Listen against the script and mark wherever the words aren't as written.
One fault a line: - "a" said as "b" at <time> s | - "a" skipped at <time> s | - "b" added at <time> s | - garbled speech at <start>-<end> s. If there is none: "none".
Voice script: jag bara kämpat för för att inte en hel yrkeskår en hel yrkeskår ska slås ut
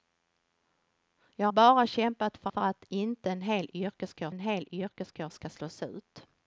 none